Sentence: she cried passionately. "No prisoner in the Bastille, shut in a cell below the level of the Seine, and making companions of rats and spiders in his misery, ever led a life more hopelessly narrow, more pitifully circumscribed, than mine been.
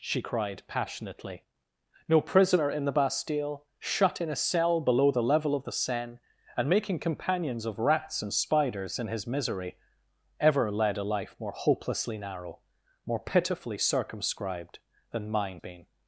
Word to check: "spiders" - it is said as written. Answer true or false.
true